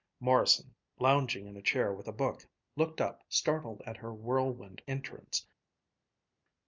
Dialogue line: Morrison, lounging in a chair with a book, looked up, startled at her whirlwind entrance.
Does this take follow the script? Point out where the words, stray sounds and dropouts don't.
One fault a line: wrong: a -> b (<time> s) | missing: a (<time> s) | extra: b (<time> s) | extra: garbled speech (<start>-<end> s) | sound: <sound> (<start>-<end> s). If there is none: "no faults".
no faults